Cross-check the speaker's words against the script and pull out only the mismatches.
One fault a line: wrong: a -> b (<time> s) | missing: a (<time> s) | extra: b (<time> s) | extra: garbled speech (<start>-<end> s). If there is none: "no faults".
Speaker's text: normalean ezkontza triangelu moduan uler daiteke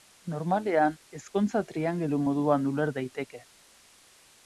no faults